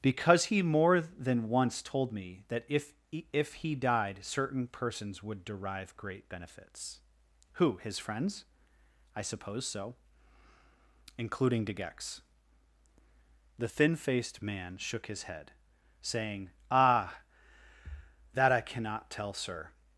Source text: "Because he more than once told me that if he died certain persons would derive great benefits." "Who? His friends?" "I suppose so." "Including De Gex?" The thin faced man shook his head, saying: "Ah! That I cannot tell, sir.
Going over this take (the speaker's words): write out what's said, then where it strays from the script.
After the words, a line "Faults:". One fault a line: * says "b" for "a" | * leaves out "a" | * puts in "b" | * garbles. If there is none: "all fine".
"Because he more than once told me that if if he died certain persons would derive great benefits." "Who? His friends?" "I suppose so." "Including De Gex?" The thin faced man shook his head, saying: "Ah! That I cannot tell, sir.
Faults:
* puts in "if"